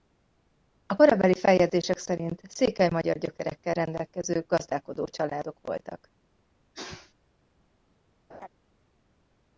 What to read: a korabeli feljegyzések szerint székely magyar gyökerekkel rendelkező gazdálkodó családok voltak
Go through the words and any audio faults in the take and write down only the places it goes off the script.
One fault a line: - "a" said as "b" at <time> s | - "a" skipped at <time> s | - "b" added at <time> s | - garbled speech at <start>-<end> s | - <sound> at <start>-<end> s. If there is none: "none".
- sneeze at 6.7-7.1 s
- laugh at 8.3-8.5 s